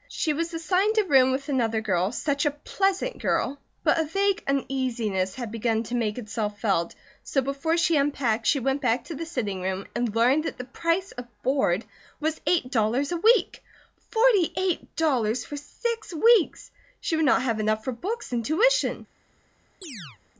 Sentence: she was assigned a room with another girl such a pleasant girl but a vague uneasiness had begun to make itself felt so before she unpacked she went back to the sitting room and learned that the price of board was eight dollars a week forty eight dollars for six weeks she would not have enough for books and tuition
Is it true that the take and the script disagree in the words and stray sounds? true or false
true